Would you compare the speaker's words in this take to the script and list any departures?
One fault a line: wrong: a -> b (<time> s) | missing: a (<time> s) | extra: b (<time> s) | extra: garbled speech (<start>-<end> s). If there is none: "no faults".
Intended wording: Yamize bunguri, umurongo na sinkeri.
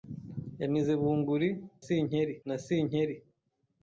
wrong: umurongo -> sinkeri (1.8 s)